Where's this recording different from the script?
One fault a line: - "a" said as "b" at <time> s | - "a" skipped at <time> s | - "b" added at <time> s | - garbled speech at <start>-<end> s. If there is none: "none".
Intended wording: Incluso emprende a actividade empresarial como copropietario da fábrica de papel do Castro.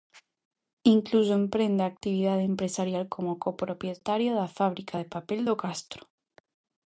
none